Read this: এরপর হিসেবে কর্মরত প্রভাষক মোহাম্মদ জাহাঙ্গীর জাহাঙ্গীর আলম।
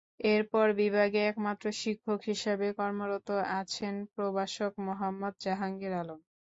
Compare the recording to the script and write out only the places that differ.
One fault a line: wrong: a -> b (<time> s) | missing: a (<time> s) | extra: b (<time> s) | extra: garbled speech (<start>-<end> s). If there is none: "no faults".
extra: বিভাগে একমাত্র শিক্ষক (0.8 s)
extra: আছেন (3.6 s)
missing: জাহাঙ্গীর (5.9 s)